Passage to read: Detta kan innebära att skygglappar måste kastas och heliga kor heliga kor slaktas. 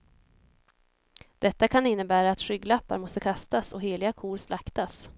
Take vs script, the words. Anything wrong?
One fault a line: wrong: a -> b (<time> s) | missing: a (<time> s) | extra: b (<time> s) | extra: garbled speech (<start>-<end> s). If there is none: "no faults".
missing: heliga kor (4.4 s)